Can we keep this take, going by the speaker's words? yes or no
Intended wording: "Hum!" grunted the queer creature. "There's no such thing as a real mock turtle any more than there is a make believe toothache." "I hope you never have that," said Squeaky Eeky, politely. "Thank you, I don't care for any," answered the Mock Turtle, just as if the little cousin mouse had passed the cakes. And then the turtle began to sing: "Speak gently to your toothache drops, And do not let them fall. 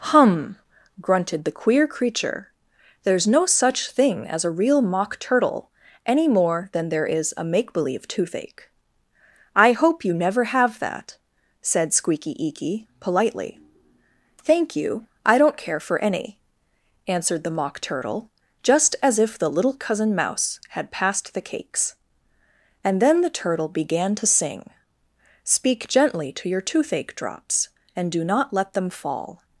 yes